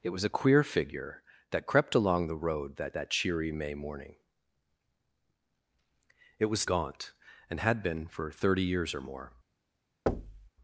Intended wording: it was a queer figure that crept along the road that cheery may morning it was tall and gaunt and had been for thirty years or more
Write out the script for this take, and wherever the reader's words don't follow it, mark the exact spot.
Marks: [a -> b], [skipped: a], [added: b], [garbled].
it was a queer figure that crept along the road that [added: that] cheery may morning it was [skipped: tall and] gaunt and had been for thirty years or more